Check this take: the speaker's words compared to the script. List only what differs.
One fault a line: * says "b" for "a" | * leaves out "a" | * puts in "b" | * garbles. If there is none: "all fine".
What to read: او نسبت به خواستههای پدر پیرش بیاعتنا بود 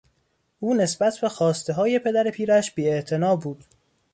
all fine